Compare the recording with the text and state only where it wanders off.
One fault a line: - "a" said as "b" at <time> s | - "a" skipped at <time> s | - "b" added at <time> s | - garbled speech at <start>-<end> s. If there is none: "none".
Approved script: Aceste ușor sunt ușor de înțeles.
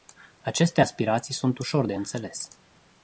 - "ușor" said as "aspirații" at 0.8 s